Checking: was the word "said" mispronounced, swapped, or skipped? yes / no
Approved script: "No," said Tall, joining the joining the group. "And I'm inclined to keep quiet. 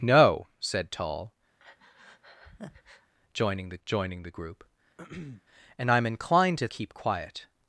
no